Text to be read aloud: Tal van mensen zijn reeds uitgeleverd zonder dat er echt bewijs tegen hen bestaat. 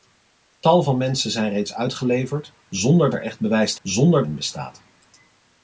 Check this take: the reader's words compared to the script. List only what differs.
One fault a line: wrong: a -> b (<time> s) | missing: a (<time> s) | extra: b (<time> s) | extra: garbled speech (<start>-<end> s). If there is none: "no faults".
missing: dat (3.1 s)
wrong: tegen -> zonder (3.8 s)